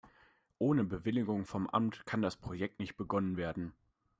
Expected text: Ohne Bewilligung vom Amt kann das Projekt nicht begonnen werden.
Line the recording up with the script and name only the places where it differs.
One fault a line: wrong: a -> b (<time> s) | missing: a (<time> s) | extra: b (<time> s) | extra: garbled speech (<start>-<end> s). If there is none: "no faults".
no faults